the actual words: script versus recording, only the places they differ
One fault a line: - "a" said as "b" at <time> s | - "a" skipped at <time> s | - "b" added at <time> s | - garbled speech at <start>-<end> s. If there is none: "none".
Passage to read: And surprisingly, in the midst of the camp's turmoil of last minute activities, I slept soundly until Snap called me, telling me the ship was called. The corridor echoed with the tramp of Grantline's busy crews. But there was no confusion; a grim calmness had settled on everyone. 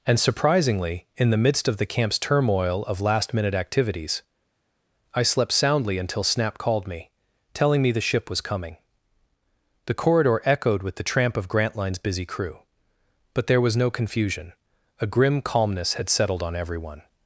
- "called" said as "coming" at 8.4 s
- "crews" said as "crew" at 12.2 s